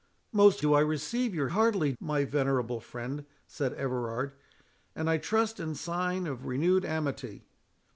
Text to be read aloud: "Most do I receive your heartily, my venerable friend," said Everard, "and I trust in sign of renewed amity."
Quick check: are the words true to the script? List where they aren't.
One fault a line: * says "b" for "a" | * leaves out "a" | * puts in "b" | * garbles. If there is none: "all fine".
all fine